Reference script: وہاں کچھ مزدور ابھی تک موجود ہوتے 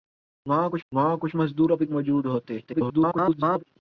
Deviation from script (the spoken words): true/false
true